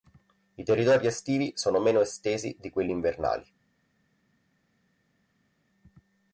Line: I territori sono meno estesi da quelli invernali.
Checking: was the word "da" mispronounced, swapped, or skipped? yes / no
yes